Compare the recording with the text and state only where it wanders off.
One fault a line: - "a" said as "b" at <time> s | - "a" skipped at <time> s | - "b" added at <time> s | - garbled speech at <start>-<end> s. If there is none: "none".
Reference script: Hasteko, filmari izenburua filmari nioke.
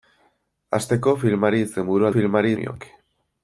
none